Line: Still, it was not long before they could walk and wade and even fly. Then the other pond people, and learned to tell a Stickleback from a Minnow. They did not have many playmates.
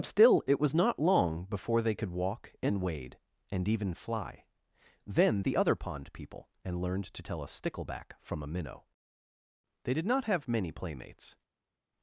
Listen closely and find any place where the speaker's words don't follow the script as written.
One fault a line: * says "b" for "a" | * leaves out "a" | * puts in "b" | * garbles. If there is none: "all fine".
all fine